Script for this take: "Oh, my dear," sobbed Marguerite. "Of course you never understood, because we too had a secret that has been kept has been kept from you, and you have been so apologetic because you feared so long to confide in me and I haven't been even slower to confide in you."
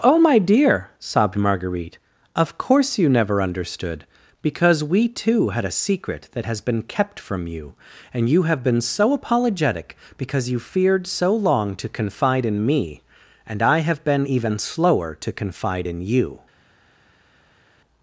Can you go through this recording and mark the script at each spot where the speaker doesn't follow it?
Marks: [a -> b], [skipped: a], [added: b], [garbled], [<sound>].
"Oh, my dear," sobbed Marguerite. "Of course you never understood, because we too had a secret that has been kept [skipped: has been kept] from you, and you have been so apologetic because you feared so long to confide in me and I [haven't -> have] been even slower to confide in you."